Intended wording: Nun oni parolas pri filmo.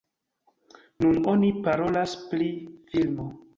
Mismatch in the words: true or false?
false